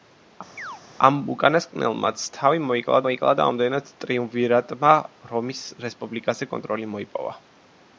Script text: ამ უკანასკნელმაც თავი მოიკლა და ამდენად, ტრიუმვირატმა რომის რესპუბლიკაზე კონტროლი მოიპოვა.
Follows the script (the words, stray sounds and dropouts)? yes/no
no